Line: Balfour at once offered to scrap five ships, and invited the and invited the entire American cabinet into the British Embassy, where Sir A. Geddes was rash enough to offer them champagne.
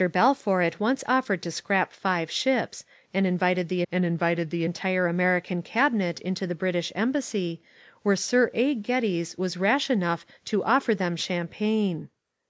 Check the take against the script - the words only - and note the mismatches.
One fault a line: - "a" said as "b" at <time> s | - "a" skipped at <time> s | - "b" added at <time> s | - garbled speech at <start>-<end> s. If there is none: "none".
none